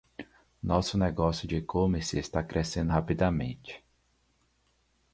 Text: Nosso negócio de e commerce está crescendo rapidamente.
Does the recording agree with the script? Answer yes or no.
yes